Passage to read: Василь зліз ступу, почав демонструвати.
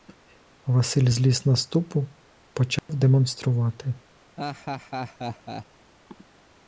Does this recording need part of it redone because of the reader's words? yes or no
yes